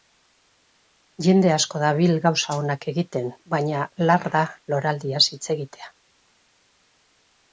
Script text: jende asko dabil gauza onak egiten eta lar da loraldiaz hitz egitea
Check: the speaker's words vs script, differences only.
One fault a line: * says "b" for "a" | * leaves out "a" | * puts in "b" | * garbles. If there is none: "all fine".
* says "baina" for "eta"